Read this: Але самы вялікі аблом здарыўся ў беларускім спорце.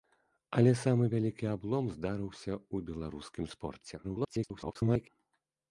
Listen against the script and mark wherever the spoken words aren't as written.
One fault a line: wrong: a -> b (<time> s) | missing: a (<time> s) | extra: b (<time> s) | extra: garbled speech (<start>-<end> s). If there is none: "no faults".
extra: garbled speech (4.0-5.1 s)